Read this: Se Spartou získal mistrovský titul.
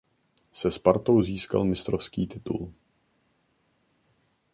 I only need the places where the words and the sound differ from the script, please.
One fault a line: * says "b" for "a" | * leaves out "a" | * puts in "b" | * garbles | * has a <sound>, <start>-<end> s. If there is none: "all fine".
all fine